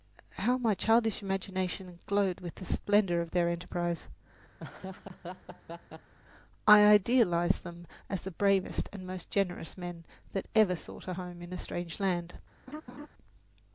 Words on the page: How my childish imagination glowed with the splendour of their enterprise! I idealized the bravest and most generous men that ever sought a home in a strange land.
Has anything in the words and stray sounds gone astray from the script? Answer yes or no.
yes